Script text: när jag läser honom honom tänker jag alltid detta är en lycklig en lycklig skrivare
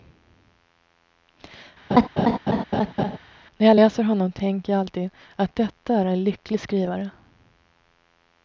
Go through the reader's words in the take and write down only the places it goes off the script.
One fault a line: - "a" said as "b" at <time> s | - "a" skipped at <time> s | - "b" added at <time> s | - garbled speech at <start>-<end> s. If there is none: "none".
- "honom" skipped at 4.3 s
- "att" added at 5.3 s
- "en lycklig" skipped at 6.6 s